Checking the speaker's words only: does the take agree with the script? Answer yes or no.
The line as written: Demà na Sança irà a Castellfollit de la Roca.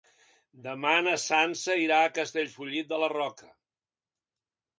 yes